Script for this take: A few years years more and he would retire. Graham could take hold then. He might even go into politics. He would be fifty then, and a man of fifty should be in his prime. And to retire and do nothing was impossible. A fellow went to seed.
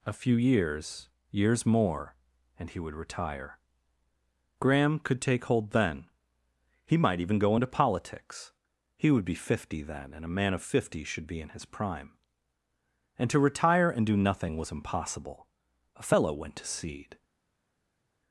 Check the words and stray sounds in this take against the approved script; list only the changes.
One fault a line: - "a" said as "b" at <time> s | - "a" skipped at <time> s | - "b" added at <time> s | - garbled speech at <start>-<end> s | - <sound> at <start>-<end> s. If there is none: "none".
none